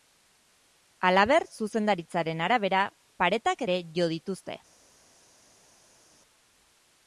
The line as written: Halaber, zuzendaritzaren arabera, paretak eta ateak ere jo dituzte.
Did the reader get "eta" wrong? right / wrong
wrong